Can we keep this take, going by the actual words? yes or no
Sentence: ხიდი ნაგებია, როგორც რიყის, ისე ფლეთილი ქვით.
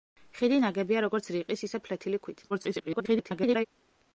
no